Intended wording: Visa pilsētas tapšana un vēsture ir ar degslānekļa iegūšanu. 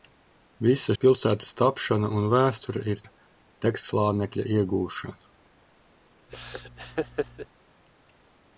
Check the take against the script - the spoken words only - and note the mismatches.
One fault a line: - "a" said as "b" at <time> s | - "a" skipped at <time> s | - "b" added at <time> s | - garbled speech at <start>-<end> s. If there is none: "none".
none